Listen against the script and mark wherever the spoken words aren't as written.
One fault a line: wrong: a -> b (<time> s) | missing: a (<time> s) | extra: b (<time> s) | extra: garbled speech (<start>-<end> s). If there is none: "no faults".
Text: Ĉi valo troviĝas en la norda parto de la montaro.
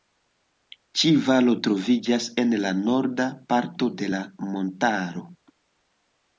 no faults